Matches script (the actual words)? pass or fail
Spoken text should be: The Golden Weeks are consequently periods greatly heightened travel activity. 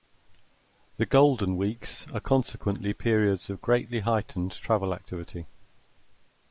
fail